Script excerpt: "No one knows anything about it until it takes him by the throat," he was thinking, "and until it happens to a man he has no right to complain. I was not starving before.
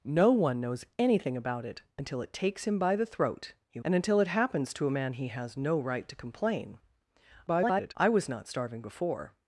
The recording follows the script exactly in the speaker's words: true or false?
false